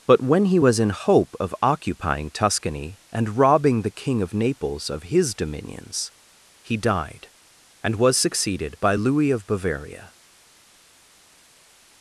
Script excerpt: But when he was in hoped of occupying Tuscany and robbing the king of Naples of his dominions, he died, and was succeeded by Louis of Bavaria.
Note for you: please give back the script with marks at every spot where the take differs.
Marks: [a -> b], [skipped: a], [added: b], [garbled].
But when he was in [hoped -> hope] of occupying Tuscany and robbing the king of Naples of his dominions, he died, and was succeeded by Louis of Bavaria.